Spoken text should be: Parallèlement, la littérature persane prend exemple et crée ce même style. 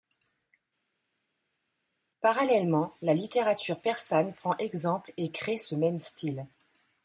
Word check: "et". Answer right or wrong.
right